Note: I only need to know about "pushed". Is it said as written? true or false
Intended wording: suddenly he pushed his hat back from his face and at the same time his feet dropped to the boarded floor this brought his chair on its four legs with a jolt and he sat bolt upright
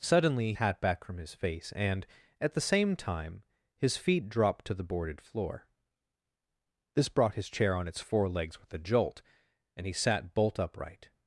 false